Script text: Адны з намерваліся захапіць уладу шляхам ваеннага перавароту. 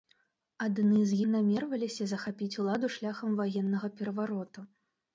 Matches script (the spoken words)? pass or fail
pass